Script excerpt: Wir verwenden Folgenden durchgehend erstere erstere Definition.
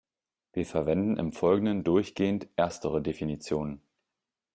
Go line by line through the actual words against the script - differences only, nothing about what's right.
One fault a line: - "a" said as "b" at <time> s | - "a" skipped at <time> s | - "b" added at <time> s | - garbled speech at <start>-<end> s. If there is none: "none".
- "im" added at 1.2 s
- "erstere" skipped at 3.0 s